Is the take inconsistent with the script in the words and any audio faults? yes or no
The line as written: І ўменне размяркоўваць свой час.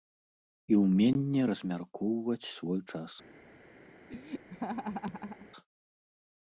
yes